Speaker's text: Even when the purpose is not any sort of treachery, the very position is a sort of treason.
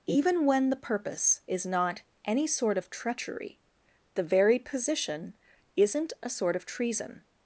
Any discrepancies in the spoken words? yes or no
yes